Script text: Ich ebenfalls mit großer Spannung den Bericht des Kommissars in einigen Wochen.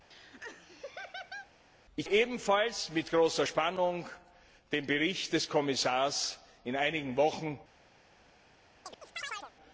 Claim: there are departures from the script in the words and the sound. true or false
true